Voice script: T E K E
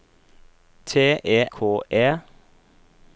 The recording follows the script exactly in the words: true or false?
true